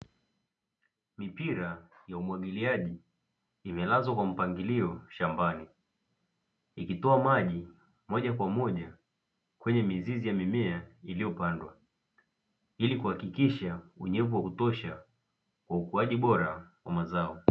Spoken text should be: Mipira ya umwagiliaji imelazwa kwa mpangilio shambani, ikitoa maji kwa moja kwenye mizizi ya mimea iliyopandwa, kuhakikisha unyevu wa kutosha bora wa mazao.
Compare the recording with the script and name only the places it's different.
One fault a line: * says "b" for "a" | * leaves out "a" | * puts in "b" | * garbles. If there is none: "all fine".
* puts in "moja"
* puts in "ili"
* puts in "kwa ukuaji"